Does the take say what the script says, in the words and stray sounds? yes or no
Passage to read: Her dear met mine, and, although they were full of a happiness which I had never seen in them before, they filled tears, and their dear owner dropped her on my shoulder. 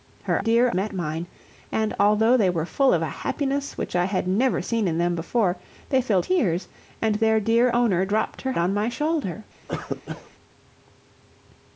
no